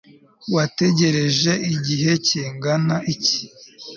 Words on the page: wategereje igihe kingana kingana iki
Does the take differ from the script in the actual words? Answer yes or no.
yes